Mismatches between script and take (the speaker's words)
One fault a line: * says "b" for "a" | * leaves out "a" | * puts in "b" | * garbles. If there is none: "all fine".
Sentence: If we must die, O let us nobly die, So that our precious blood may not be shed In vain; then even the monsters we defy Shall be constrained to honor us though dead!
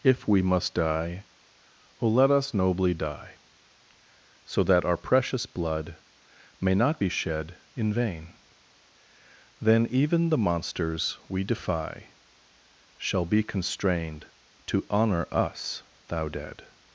* says "thou" for "though"